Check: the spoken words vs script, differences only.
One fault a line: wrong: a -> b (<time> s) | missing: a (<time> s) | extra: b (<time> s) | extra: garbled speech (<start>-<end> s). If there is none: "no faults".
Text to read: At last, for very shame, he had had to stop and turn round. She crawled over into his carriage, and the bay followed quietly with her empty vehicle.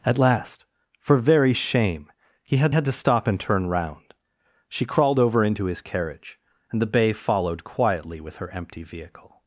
no faults